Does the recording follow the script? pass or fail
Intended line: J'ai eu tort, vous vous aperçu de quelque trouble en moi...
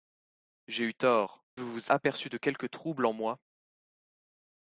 pass